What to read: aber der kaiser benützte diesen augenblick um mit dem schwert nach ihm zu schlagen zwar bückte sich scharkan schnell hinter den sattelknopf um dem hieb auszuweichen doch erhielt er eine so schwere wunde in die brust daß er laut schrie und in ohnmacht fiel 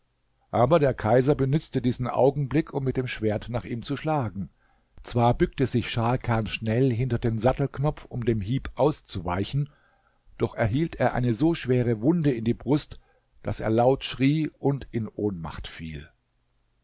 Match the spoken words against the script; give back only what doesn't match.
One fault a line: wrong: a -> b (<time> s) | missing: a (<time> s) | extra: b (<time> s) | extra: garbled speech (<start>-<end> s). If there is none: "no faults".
no faults